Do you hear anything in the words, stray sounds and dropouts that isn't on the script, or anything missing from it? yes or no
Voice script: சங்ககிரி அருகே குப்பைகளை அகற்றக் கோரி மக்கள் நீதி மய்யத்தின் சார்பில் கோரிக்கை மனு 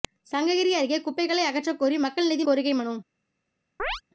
yes